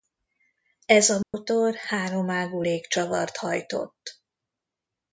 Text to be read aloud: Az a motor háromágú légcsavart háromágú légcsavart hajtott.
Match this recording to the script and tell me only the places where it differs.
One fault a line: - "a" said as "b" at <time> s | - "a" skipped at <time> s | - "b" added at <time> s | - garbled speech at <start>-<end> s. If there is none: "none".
- "Az" said as "Ez" at 0.8 s
- "háromágú légcsavart" skipped at 3.4 s